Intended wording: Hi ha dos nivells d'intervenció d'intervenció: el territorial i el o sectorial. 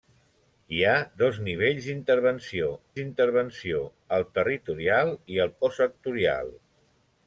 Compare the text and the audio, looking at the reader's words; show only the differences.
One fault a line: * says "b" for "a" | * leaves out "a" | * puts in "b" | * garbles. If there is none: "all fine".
all fine